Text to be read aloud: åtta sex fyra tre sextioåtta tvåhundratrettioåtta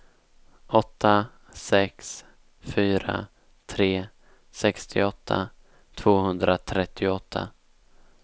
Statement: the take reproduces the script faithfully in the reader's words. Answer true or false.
true